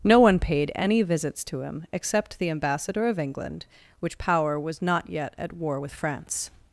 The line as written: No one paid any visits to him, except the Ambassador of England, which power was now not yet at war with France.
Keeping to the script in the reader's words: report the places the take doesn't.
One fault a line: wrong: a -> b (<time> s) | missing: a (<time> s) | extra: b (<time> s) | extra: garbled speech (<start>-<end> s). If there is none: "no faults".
missing: now (4.8 s)